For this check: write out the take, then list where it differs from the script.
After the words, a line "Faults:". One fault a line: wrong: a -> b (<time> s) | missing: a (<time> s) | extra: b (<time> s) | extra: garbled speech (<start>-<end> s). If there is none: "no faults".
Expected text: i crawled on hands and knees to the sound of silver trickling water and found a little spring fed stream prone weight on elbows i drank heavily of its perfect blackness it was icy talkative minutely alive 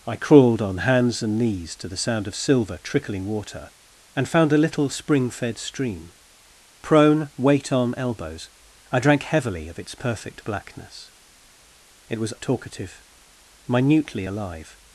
i crawled on hands and knees to the sound of silver trickling water and found a little spring fed stream prone weight on elbows i drank heavily of its perfect blackness it was talkative minutely alive
Faults:
missing: icy (12.3 s)